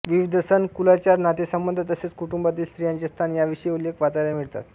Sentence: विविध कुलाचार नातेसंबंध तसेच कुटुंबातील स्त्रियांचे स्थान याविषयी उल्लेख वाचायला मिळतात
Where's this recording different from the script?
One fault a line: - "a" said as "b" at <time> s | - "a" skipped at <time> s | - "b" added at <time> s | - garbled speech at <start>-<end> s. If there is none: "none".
- "सण" added at 0.4 s